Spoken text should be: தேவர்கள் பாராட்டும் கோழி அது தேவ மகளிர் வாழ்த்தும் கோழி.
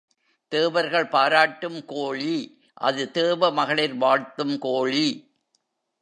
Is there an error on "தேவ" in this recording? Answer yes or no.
no